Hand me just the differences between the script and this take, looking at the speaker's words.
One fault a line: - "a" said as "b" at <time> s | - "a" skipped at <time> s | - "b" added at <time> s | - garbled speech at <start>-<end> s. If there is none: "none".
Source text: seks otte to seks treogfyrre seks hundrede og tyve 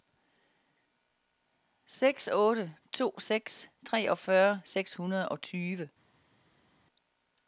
none